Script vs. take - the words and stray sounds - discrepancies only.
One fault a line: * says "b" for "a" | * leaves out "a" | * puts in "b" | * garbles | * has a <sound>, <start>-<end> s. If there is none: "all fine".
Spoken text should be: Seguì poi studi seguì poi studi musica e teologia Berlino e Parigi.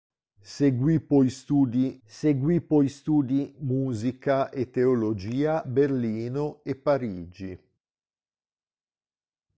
all fine